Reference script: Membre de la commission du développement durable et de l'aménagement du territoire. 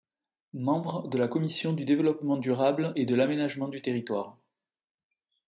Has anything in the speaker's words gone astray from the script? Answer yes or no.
no